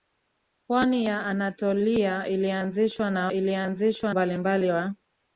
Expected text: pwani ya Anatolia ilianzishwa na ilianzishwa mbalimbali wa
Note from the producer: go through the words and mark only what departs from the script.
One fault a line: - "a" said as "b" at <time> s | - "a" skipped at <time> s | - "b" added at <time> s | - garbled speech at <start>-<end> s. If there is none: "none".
none